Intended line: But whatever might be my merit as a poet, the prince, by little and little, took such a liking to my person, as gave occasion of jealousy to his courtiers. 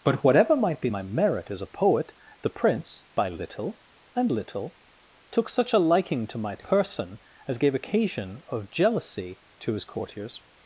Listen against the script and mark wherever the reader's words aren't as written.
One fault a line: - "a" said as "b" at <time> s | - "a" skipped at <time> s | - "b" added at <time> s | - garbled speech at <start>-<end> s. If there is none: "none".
none